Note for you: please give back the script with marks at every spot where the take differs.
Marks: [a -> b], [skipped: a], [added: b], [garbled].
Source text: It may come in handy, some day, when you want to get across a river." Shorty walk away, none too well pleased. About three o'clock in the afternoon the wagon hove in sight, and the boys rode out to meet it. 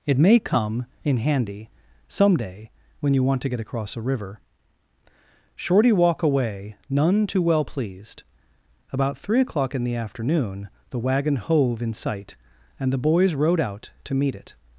It may come in handy, some day, when you want to get across a river." Shorty walk away, none too well pleased. About three o'clock in the afternoon the wagon hove in sight, and the boys rode out to meet it.